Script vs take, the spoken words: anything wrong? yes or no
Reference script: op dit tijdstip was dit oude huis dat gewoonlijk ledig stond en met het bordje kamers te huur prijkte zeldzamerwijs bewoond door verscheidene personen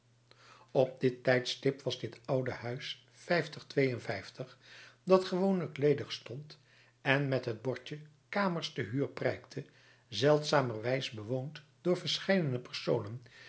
no